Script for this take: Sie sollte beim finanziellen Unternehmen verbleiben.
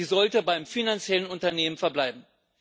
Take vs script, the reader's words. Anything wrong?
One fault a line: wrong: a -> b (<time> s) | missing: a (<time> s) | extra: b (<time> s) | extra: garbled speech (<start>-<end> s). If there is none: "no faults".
no faults